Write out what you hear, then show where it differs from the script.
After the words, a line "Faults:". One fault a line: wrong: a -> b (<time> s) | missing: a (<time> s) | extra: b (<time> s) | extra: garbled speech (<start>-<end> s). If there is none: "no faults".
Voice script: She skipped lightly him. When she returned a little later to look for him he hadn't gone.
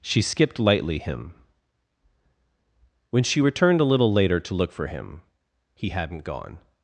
She skipped lightly him. When she returned a little later to look for him he hadn't gone.
Faults:
no faults